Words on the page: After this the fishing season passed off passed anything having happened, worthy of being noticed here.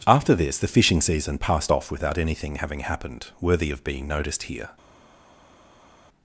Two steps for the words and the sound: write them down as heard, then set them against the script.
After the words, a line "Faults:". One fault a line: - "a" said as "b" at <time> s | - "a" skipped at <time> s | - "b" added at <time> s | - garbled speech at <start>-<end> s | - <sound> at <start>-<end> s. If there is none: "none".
After this the fishing season passed off without anything having happened, worthy of being noticed here.
Faults:
- "passed" said as "without" at 1.9 s